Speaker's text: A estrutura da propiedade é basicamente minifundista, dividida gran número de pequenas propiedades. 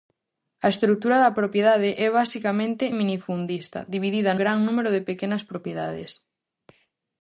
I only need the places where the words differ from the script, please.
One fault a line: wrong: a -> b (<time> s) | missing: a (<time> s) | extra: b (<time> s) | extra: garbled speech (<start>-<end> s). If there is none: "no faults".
no faults